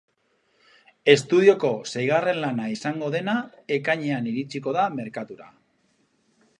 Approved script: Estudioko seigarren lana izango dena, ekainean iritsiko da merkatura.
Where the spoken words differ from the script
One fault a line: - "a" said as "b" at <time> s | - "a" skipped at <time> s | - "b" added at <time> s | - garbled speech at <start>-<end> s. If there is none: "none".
none